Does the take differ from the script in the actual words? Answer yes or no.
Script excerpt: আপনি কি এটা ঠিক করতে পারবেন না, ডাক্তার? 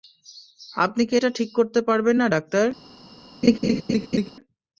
no